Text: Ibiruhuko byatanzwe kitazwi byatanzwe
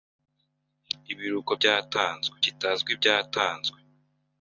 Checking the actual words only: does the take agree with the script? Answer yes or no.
yes